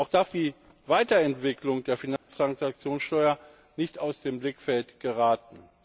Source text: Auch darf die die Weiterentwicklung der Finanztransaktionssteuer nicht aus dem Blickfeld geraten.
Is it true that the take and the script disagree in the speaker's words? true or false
true